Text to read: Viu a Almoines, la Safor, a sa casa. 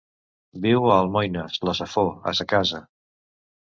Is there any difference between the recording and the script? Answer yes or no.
no